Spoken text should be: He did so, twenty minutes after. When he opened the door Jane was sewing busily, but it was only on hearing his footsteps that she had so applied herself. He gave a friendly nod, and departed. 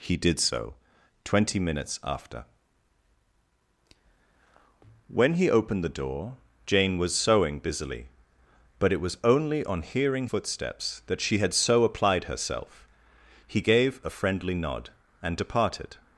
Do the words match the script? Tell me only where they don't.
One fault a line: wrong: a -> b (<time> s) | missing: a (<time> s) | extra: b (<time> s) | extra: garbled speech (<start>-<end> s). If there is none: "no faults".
missing: his (10.3 s)